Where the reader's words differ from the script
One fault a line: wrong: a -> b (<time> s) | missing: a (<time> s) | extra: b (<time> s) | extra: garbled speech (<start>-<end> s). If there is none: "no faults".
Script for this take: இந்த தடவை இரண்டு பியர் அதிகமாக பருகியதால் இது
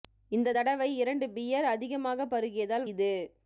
no faults